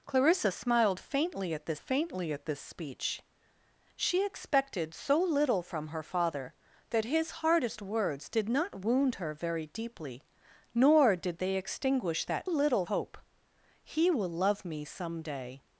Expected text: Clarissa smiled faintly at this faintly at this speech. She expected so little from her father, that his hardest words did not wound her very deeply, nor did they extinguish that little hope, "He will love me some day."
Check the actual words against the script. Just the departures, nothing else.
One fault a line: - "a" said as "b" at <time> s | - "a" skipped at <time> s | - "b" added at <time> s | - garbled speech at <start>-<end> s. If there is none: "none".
none